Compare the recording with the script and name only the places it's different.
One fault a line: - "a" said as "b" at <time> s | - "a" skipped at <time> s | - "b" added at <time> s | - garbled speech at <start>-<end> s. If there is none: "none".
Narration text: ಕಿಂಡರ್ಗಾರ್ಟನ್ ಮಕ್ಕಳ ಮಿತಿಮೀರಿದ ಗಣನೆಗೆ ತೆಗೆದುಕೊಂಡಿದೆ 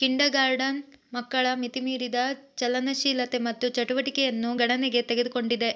- "ಚಲನಶೀಲತೆ ಮತ್ತು ಚಟುವಟಿಕೆಯನ್ನು" added at 2.6 s